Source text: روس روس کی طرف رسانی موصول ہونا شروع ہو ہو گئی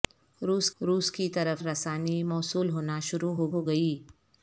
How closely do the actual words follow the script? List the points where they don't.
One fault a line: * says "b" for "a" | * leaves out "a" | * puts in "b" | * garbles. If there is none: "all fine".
all fine